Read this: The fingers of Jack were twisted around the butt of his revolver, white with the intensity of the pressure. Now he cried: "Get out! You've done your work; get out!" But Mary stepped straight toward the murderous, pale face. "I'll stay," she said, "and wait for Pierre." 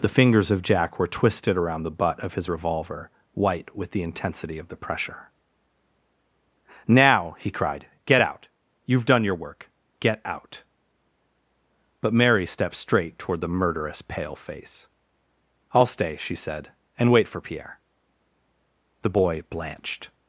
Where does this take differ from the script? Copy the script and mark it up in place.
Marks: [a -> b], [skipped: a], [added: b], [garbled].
The fingers of Jack were twisted around the butt of his revolver, white with the intensity of the pressure. Now he cried: "Get out! You've done your work; get out!" But Mary stepped straight toward the murderous, pale face. "I'll stay," she said, "and wait for Pierre." [added: The boy blanched]